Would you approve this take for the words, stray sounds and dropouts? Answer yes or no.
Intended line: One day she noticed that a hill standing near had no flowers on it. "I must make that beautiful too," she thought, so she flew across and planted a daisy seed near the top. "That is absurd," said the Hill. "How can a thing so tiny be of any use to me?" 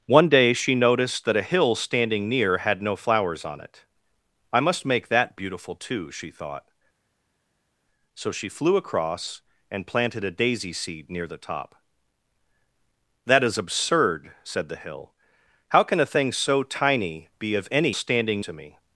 no